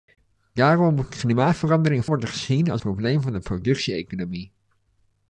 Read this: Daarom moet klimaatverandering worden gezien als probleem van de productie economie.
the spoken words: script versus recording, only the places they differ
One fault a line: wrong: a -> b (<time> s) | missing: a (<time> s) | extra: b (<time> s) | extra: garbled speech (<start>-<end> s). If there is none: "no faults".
no faults